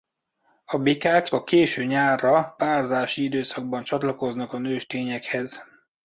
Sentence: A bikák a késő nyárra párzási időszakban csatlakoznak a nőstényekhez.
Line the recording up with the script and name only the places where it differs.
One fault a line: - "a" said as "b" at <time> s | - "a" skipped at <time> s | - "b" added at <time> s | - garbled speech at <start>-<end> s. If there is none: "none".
none